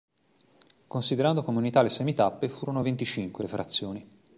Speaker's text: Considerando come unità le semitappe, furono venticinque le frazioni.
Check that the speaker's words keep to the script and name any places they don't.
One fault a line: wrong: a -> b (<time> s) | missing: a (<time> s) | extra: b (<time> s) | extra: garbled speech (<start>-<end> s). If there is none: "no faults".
no faults